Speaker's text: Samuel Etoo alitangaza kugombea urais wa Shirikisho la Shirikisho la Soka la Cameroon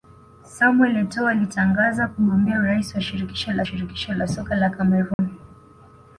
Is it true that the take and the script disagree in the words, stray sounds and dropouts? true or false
true